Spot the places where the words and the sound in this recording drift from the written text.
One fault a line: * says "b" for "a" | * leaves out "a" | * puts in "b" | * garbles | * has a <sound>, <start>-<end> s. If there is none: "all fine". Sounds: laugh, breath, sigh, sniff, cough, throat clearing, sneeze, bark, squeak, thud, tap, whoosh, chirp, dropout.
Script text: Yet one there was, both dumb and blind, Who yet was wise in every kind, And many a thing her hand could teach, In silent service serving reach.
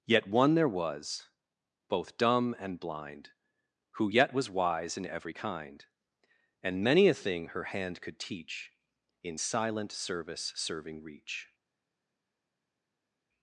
all fine